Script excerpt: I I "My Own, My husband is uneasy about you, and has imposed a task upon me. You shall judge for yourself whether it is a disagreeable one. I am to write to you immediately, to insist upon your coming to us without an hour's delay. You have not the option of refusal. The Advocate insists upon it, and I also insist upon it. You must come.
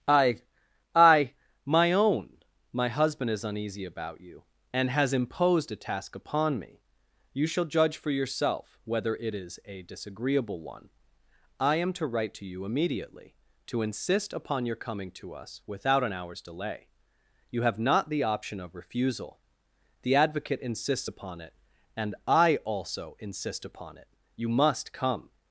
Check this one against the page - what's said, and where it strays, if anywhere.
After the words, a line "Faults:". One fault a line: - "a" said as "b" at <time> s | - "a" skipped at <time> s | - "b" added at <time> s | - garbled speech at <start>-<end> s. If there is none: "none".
I I "My Own, My husband is uneasy about you, and has imposed a task upon me. You shall judge for yourself whether it is a disagreeable one. I am to write to you immediately, to insist upon your coming to us without an hour's delay. You have not the option of refusal. The Advocate insists upon it, and I also insist upon it. You must come.
Faults:
none